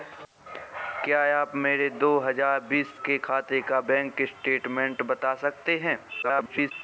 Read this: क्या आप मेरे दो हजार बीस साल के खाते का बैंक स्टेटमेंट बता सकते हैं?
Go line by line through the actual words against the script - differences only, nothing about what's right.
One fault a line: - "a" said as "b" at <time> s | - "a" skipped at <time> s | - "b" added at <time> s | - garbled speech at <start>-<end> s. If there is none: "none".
- "साल" skipped at 3.0 s
- garbled speech at 6.2-6.7 s